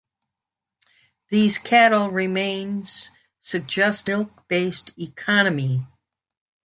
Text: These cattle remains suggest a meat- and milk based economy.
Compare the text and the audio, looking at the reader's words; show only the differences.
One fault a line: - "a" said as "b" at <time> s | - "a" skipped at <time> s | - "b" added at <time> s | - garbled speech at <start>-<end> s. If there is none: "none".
- "a meat and" skipped at 4.1 s